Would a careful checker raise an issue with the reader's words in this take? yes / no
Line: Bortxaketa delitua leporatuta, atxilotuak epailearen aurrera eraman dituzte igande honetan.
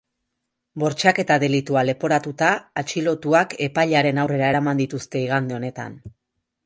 no